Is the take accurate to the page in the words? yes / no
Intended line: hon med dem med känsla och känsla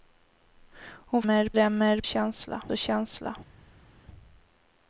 yes